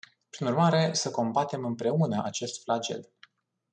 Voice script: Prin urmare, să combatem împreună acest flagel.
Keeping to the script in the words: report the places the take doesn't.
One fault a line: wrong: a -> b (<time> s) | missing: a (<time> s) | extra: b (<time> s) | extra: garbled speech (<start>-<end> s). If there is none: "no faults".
no faults